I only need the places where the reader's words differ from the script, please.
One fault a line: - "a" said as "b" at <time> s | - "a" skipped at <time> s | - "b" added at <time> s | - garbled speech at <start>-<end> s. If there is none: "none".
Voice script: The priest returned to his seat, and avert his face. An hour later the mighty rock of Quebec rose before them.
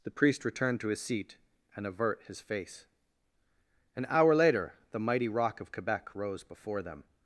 none